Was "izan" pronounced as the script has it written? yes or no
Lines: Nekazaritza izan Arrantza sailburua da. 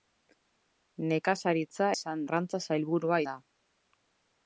yes